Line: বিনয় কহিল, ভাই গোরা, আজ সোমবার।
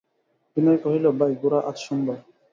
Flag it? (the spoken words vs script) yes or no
no